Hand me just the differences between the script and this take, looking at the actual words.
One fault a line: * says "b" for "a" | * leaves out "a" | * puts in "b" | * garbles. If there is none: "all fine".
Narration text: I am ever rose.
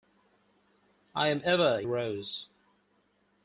all fine